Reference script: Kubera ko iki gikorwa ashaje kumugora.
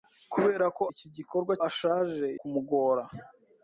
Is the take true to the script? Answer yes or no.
yes